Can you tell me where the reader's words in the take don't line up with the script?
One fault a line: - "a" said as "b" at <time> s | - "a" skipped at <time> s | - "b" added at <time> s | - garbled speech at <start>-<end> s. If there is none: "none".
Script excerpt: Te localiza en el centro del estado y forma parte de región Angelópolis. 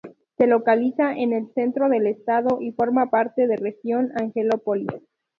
- "Te" said as "Se" at 0.3 s